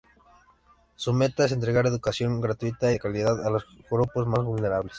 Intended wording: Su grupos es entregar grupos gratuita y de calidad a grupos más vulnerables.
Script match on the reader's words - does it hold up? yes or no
no